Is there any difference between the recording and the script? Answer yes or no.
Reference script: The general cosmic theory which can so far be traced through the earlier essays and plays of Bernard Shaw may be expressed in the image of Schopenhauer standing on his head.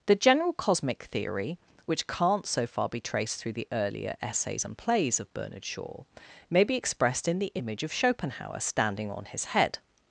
yes